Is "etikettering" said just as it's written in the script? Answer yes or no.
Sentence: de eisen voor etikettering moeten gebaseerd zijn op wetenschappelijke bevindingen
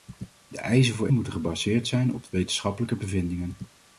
no